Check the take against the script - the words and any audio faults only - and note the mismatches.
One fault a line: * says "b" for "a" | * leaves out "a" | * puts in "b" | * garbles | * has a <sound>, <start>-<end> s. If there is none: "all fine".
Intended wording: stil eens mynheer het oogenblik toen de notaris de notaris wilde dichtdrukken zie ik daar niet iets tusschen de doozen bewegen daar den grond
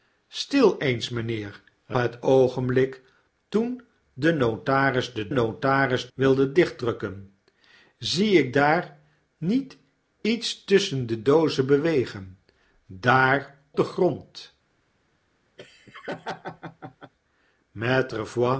* has a laugh, 15.6-17.1 s